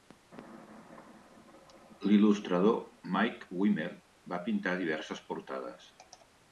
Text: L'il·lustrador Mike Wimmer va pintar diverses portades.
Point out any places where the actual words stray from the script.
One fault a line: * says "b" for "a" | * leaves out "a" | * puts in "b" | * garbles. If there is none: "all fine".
all fine